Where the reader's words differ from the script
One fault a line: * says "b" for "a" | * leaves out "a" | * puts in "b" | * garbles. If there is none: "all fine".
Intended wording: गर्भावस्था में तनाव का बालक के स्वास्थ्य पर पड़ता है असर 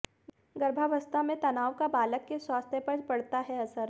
all fine